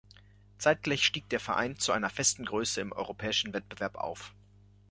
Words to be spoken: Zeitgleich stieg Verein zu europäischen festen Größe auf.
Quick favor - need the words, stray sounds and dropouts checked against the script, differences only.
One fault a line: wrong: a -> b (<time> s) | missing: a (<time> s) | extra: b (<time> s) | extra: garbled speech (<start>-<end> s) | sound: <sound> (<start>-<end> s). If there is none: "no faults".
extra: der (1.3 s)
wrong: europäischen -> einer (1.9 s)
extra: im europäischen Wettbewerb (2.8 s)